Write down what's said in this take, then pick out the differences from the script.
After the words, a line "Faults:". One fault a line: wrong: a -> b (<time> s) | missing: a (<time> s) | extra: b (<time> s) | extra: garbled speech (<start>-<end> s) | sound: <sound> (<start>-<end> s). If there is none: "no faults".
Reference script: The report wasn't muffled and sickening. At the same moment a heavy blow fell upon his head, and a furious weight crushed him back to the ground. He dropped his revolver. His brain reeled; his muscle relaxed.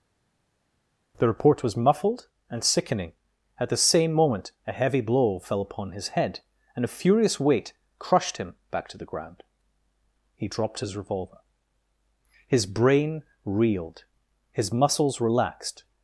The report was muffled and sickening. At the same moment a heavy blow fell upon his head, and a furious weight crushed him back to the ground. He dropped his revolver. His brain reeled; his muscles relaxed.
Faults:
wrong: wasn't -> was (1.6 s)
wrong: muscle -> muscles (14.7 s)